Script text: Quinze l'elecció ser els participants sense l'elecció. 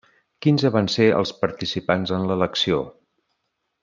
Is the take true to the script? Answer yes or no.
no